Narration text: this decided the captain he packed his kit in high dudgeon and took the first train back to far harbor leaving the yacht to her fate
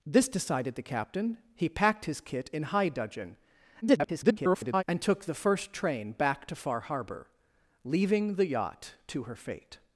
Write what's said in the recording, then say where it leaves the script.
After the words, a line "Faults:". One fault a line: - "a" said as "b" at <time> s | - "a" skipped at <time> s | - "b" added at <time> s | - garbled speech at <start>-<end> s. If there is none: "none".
this decided the captain he packed his kit in high dudgeon [garbled] and took the first train back to far harbor leaving the yacht to her fate
Faults:
- garbled speech at 3.8-4.8 s